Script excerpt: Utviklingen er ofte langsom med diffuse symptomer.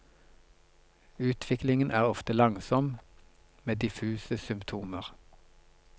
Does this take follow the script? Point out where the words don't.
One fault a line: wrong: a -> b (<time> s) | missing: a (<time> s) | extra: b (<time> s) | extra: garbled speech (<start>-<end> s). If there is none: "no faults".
no faults